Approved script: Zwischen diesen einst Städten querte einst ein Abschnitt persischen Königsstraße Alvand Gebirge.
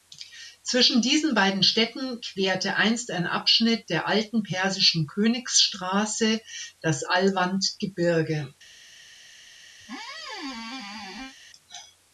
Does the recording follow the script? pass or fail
fail